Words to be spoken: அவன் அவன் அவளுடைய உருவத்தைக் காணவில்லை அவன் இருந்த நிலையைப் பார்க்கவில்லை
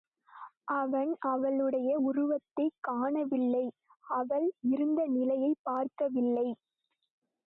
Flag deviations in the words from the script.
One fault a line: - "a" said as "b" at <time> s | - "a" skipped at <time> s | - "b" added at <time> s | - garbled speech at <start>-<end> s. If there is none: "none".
- "அவன்" skipped at 1.1 s
- "அவன்" said as "அவள்" at 4.1 s